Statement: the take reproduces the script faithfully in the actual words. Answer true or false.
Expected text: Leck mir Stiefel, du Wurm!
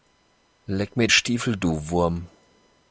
true